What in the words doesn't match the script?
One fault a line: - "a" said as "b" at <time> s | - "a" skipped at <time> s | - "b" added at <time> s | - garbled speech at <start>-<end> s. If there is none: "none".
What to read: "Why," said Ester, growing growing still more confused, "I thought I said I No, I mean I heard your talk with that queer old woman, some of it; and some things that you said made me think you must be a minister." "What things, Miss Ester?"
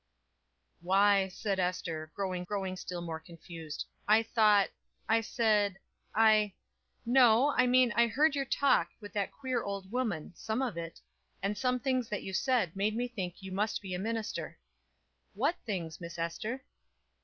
none